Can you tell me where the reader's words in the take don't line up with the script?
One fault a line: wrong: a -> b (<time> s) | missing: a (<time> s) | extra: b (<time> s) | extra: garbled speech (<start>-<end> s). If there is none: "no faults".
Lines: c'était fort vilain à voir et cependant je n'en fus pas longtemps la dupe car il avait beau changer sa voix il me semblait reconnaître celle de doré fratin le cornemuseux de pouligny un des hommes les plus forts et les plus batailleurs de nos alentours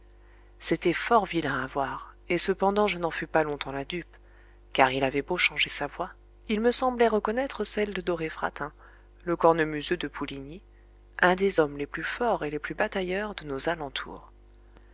no faults